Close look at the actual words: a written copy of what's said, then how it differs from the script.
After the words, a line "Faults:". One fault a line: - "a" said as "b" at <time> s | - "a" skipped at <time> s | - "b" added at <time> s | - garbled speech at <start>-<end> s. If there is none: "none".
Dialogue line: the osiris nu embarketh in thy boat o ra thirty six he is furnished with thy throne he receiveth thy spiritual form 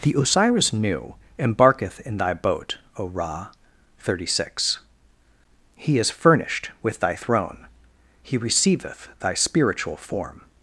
the osiris nu embarketh in thy boat o ra thirty six he is furnished with thy throne he receiveth thy spiritual form
Faults:
none